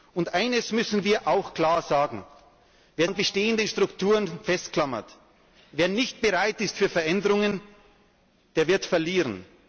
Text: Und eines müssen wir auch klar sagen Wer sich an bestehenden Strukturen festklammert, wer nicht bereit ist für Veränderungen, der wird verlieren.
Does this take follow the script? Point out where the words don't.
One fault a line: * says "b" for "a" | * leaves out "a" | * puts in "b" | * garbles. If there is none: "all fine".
* leaves out "sich"